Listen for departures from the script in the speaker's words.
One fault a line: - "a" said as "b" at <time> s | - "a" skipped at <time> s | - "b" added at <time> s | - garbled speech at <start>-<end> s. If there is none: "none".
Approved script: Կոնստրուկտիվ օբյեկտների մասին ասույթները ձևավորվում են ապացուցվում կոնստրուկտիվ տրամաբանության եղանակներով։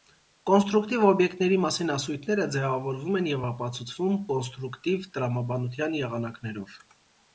- "և" added at 3.3 s